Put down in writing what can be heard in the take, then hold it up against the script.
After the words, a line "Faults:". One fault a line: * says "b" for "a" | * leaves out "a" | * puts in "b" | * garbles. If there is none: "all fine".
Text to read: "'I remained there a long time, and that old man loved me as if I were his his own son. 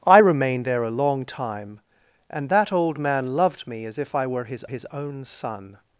"'I remained there a long time, and that old man loved me as if I were his his own son.
Faults:
all fine